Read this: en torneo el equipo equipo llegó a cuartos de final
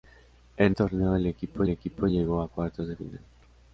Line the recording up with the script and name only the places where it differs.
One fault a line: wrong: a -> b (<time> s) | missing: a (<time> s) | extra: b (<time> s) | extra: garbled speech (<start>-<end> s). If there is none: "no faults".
no faults